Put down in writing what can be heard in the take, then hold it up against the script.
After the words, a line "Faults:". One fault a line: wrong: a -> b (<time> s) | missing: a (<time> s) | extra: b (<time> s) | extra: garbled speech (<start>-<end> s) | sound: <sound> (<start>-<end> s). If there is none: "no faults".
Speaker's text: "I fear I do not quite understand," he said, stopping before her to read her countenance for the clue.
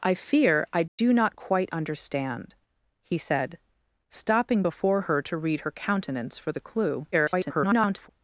"I fear I do not quite understand," he said, stopping before her to read her countenance for the clue. [garbled]
Faults:
sound: dropout (0.9-1.0 s)
extra: garbled speech (7.1-8.1 s)